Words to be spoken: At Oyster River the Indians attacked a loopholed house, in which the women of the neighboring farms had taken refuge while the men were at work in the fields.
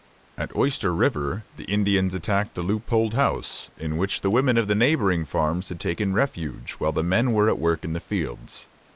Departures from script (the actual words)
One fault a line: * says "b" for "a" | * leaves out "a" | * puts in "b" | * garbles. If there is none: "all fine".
all fine